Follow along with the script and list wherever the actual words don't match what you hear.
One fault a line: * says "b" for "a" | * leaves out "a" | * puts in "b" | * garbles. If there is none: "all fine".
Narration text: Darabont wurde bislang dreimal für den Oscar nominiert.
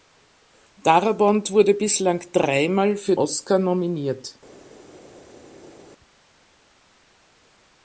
* leaves out "den"